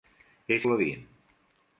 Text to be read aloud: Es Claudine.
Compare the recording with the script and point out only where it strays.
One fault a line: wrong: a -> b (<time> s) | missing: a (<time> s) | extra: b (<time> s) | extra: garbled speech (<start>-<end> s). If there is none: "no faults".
no faults